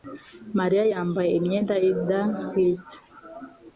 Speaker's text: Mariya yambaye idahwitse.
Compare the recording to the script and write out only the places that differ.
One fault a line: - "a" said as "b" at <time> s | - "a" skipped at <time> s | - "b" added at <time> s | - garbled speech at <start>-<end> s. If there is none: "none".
- "imyenda" added at 1.4 s